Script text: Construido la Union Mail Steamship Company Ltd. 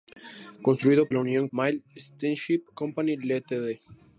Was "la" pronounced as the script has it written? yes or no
yes